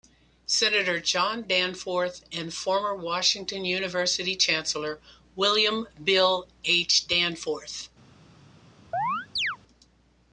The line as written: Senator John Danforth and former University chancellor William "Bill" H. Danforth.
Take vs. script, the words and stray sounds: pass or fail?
fail